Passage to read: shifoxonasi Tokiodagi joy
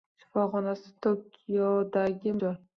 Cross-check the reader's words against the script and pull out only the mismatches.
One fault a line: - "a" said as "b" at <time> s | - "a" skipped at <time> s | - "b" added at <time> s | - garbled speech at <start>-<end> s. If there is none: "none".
none